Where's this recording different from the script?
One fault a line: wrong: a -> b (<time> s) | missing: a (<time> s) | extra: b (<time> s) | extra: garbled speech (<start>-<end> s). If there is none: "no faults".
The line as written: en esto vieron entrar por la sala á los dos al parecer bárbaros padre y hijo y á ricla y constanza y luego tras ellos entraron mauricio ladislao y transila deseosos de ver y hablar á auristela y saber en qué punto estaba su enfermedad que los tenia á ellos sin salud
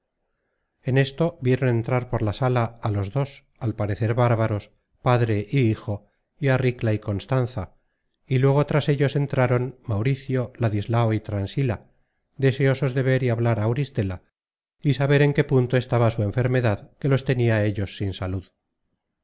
no faults